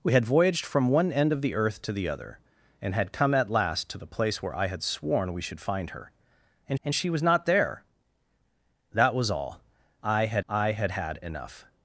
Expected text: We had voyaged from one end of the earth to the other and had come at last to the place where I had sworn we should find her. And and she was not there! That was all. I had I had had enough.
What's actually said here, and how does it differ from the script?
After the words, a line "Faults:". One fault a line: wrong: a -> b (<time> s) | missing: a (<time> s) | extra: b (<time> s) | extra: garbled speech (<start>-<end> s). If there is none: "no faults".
We had voyaged from one end of the earth to the other and had come at last to the place where I had sworn we should find her. And and she was not there! That was all. I had I had had enough.
Faults:
no faults